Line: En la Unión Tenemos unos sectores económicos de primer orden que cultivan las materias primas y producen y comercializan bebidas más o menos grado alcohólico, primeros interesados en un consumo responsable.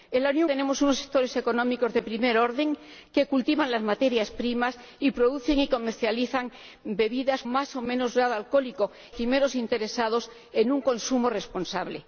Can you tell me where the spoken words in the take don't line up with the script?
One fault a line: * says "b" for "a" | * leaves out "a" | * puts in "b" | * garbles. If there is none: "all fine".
all fine